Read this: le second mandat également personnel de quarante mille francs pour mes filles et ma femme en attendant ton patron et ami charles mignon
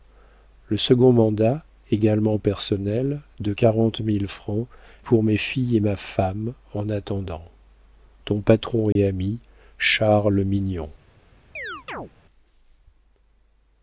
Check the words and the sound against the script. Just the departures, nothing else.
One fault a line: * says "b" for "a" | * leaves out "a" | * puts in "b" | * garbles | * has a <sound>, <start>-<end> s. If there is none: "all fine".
* has a dropout, 8.9-9.0 s
* has a chirp, 11.6-12.1 s